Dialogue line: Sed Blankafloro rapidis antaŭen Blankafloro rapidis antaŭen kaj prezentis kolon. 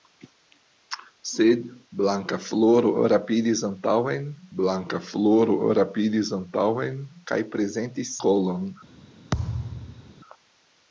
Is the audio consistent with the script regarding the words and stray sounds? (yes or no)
no